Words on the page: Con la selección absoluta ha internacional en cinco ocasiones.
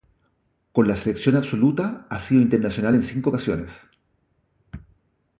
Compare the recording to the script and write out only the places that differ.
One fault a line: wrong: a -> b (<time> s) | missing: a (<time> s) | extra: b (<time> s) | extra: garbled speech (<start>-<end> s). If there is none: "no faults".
extra: sido (2.2 s)